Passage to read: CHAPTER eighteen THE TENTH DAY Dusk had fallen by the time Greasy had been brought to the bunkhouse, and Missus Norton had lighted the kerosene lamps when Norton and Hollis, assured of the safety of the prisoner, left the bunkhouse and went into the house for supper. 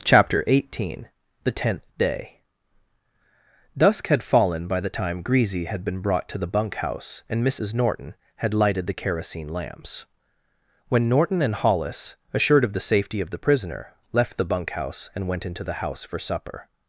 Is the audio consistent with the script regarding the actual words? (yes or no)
yes